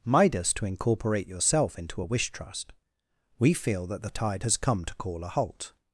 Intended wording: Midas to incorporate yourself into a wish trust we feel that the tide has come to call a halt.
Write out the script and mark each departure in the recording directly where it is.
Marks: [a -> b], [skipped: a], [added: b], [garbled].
Midas to incorporate yourself into a wish trust we feel that the tide has come to call a halt.